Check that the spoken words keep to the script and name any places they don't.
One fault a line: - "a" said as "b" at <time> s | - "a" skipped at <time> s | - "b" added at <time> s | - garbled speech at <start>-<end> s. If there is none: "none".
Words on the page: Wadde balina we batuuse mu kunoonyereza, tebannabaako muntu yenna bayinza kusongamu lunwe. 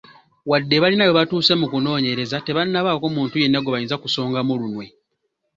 - "gwe" added at 3.6 s